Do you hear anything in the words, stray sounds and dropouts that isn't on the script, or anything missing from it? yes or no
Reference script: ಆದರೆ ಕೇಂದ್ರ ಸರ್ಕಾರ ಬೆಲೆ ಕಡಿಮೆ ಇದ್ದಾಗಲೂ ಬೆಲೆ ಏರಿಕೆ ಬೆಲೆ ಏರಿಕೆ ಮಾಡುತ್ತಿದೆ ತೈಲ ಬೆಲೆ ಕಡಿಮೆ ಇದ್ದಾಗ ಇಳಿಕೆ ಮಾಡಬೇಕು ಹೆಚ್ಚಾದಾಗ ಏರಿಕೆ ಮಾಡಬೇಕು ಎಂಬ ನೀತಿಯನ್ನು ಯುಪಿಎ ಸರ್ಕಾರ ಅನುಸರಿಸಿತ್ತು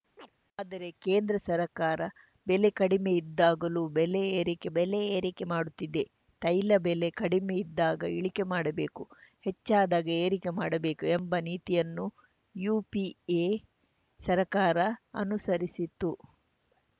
yes